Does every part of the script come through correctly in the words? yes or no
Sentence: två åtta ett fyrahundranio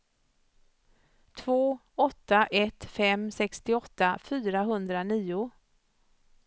no